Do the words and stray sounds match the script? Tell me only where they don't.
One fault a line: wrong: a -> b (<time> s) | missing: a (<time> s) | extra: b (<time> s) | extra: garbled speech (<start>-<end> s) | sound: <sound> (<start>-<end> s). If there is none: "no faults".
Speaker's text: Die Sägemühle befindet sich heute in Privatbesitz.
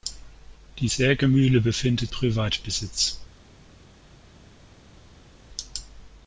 missing: sich heute in (2.1 s)